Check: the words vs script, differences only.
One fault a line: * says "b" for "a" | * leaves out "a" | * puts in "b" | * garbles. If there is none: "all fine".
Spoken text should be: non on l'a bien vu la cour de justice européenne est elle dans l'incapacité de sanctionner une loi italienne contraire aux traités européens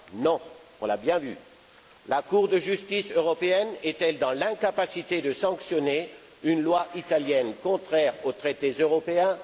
all fine